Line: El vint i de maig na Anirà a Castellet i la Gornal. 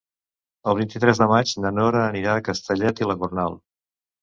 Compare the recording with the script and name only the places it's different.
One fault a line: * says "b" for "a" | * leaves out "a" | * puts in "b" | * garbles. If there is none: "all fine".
* puts in "tres"
* puts in "Nora"